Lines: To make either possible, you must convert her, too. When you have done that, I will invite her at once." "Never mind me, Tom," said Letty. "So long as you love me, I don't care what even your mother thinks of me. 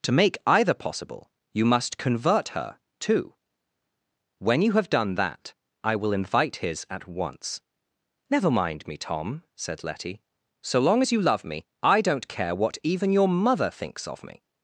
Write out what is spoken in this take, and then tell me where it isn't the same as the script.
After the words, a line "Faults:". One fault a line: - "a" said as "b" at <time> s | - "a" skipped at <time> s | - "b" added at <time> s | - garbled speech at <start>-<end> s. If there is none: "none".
To make either possible, you must convert her, too. When you have done that, I will invite his at once." "Never mind me, Tom," said Letty. "So long as you love me, I don't care what even your mother thinks of me.
Faults:
- "her" said as "his" at 6.6 s